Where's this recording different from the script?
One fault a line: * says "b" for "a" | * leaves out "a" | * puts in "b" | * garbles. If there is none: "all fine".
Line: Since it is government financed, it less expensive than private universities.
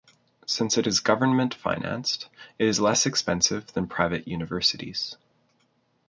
* puts in "is"